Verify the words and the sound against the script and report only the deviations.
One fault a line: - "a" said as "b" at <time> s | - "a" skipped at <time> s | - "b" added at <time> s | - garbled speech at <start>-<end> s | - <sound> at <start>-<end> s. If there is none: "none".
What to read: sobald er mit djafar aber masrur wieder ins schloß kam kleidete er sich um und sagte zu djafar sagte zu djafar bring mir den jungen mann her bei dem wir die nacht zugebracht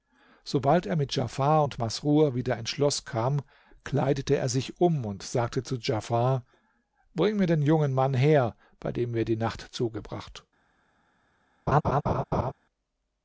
- "aber" said as "und" at 1.6 s
- "sagte zu djafar" skipped at 6.5 s
- laugh at 11.7-12.5 s